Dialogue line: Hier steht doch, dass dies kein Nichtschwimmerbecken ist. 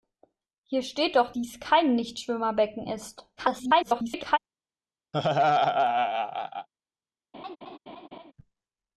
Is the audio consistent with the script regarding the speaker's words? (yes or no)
no